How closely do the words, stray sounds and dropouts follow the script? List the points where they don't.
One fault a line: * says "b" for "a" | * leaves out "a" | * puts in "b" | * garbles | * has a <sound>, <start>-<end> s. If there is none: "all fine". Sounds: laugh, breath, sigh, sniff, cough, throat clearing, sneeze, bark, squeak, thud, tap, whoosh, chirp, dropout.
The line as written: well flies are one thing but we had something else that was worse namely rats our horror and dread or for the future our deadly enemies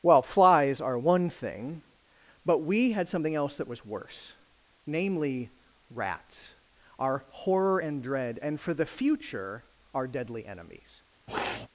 * says "and" for "or"
* has a sniff, 11.3-11.7 s